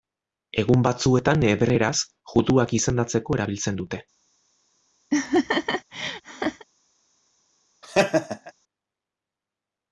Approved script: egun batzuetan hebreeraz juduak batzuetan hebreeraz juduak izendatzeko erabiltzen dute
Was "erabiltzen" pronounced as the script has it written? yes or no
yes